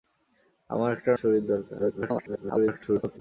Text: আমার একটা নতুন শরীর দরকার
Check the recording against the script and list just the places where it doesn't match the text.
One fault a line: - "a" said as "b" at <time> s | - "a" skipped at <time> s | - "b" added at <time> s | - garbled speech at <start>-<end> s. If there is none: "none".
- "নতুন" skipped at 1.1 s
- garbled speech at 1.8-3.2 s